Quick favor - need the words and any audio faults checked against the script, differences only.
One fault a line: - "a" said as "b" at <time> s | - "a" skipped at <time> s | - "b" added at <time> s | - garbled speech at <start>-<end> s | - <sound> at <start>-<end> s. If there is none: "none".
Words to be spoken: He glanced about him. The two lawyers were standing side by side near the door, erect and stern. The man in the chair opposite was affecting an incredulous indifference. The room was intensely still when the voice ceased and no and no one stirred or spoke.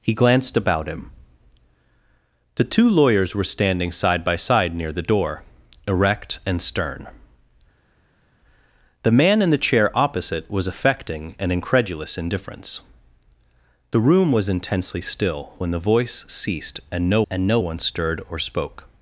none